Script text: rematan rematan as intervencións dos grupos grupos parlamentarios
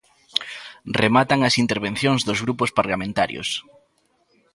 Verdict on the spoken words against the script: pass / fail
fail